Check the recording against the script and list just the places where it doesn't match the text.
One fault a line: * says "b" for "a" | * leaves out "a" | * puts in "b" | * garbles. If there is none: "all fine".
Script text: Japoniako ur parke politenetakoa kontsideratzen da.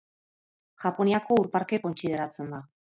* leaves out "politenetakoa"